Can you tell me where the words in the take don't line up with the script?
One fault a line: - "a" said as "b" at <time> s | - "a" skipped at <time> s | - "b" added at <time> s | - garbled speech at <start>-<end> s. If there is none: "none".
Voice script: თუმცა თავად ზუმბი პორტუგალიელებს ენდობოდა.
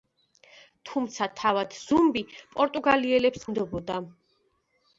none